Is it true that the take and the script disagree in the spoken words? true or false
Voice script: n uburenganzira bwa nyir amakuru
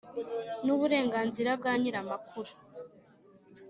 false